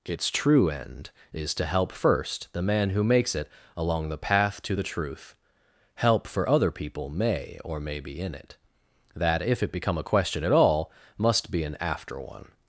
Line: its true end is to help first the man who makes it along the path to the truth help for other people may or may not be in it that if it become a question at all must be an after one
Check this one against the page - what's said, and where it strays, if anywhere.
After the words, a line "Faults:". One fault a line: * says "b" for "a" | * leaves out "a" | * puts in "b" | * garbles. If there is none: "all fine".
its true end is to help first the man who makes it along the path to the truth help for other people may or may be in it that if it become a question at all must be an after one
Faults:
* leaves out "not"